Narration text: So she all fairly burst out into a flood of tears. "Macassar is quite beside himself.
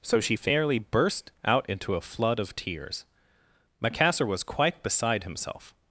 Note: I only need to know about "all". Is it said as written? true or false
false